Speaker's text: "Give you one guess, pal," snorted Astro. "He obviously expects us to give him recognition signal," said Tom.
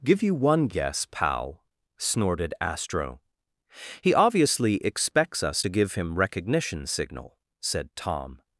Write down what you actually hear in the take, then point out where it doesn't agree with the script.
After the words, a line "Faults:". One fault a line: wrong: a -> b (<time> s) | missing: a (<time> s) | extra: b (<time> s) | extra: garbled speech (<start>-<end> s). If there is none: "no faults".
"Give you one guess, pal," snorted Astro. "He obviously expects us to give him recognition signal," said Tom.
Faults:
no faults